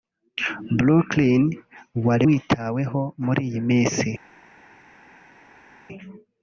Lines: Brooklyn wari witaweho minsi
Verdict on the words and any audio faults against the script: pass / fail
fail